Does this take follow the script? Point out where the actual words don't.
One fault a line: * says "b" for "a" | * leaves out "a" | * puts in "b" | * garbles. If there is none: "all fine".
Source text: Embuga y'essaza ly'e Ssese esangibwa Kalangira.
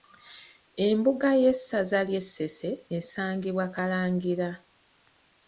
all fine